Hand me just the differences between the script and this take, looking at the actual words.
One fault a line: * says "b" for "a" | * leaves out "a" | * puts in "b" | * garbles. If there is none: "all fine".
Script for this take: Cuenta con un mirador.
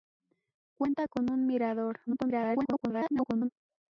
* garbles